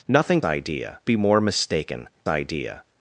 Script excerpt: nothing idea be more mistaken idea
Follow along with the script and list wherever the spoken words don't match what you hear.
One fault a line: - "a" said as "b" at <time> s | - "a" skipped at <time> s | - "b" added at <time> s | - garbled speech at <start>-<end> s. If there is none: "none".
none